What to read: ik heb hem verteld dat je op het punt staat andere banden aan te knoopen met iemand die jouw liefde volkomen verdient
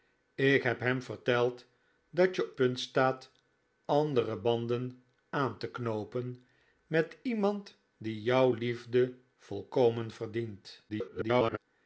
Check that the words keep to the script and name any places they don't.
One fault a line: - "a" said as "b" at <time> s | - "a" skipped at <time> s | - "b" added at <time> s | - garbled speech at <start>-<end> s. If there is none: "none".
- "op het" skipped at 2.5 s
- garbled speech at 10.9-11.6 s